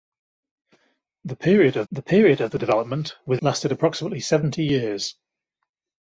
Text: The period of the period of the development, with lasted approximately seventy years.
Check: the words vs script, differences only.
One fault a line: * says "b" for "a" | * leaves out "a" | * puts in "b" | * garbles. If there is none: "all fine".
all fine